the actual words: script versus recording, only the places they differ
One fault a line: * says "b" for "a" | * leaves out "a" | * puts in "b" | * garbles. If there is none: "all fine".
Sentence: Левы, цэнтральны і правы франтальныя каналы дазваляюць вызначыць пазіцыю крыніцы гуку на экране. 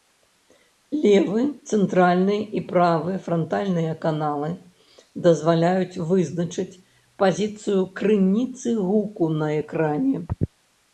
all fine